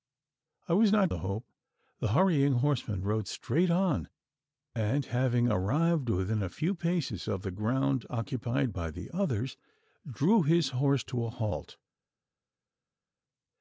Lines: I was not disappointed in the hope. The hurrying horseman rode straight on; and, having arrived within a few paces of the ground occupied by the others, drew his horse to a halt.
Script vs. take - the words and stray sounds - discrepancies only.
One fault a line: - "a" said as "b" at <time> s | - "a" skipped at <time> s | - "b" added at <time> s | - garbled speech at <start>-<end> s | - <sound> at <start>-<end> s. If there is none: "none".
- "disappointed in" skipped at 1.1 s